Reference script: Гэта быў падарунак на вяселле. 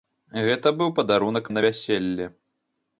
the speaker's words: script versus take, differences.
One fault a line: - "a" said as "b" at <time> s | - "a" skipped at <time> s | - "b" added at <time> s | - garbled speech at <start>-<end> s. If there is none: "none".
none